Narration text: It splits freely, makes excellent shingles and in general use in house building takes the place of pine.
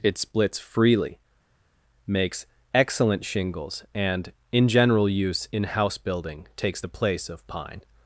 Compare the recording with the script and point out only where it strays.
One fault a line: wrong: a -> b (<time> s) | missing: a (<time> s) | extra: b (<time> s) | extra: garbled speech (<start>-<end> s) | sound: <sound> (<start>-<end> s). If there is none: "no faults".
no faults